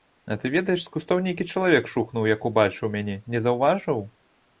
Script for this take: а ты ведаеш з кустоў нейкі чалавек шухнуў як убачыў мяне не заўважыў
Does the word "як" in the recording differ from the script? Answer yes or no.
no